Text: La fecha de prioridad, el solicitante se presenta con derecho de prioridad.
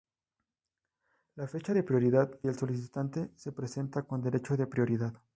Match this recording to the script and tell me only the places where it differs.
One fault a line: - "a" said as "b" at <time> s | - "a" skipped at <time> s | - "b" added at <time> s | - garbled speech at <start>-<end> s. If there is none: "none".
none